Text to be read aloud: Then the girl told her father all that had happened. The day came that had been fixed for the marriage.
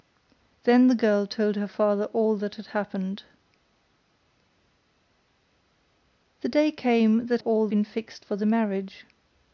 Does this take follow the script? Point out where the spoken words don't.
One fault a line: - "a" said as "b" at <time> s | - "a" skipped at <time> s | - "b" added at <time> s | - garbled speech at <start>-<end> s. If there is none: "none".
- "had" said as "all" at 7.4 s